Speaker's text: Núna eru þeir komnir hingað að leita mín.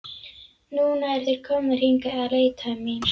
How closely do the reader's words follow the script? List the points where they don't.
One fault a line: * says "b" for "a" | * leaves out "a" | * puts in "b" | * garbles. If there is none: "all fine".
all fine